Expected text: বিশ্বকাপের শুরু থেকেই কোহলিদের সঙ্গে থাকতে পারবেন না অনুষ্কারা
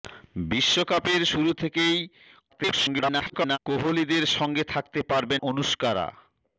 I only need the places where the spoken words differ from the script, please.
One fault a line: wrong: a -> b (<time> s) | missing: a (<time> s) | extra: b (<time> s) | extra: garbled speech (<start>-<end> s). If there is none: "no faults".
extra: garbled speech (2.5-3.6 s)
missing: না (5.4 s)